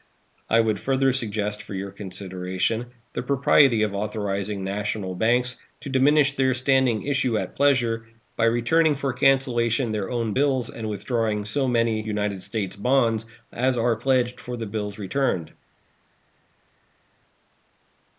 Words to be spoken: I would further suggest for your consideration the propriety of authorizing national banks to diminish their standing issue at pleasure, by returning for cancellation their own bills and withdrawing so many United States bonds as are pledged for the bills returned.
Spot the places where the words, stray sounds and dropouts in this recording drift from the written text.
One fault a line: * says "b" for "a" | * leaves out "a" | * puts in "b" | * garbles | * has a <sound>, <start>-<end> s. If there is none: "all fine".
all fine